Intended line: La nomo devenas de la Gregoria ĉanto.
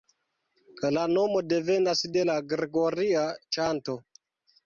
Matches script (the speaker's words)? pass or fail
pass